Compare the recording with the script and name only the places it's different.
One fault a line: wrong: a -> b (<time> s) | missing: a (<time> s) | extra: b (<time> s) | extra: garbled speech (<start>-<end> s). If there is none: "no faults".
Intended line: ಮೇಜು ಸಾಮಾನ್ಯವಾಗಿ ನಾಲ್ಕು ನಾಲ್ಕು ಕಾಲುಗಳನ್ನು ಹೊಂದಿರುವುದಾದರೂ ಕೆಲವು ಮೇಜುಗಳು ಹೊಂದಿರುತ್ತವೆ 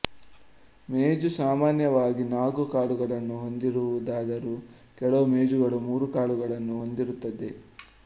missing: ನಾಲ್ಕು (2.6 s)
extra: ಮೂರು ಕಾಲುಗಳನ್ನು (5.9 s)